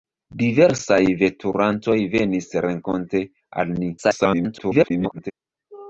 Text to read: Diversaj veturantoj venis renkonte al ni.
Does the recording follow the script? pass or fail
fail